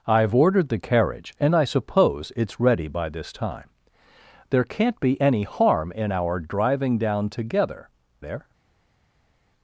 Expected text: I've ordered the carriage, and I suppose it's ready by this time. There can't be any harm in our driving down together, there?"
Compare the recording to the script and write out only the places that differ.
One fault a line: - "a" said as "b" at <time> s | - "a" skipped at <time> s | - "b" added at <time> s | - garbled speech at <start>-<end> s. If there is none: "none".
none